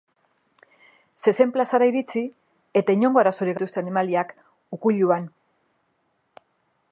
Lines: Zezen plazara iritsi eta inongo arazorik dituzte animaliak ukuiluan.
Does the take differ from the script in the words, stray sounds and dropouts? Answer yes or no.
no